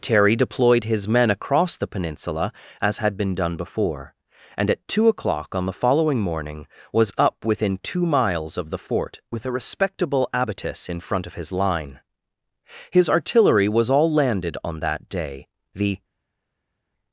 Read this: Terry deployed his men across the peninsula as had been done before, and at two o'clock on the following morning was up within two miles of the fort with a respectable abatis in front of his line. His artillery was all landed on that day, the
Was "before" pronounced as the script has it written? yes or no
yes